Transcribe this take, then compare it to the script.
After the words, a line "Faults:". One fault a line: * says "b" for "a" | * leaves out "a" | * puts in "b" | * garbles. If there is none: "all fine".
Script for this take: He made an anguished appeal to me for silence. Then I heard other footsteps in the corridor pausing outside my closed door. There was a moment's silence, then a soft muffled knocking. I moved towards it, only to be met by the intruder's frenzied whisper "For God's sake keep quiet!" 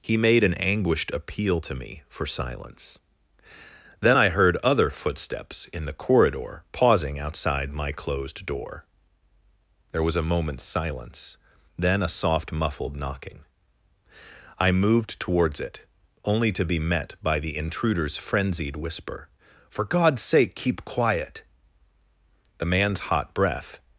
He made an anguished appeal to me for silence. Then I heard other footsteps in the corridor pausing outside my closed door. There was a moment's silence, then a soft muffled knocking. I moved towards it, only to be met by the intruder's frenzied whisper "For God's sake keep quiet!" The man's hot breath
Faults:
* puts in "The man's hot breath"